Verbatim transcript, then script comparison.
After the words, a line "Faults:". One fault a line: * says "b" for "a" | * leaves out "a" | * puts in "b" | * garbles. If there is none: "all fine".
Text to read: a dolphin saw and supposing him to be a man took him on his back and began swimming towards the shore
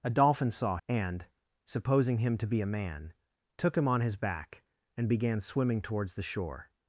a dolphin saw and supposing him to be a man took him on his back and began swimming towards the shore
Faults:
all fine